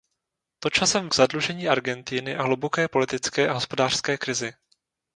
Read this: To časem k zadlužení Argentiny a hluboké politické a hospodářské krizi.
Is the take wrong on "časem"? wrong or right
right